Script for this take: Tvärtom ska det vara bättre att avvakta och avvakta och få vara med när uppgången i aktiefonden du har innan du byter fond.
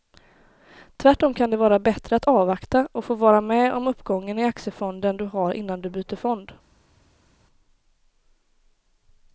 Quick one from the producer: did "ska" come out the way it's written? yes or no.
no